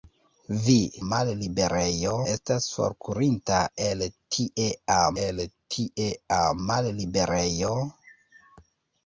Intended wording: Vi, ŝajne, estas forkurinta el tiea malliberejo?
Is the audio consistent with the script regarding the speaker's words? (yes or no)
no